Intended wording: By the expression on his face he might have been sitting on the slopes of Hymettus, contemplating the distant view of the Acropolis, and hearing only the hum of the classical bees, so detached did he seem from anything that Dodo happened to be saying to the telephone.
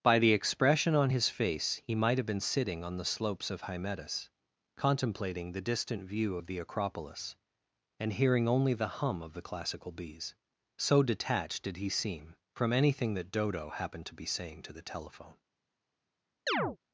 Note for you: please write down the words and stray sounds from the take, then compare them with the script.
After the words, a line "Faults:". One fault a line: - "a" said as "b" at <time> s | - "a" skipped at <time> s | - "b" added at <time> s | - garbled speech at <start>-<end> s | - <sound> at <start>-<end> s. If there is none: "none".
By the expression on his face he might have been sitting on the slopes of Hymettus, contemplating the distant view of the Acropolis, and hearing only the hum of the classical bees, so detached did he seem from anything that Dodo happened to be saying to the telephone.
Faults:
- chirp at 16.5-16.8 s